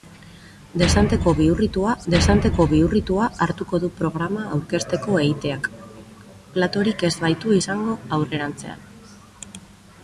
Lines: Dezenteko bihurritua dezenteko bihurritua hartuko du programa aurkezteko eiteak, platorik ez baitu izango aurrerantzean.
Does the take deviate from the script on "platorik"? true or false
false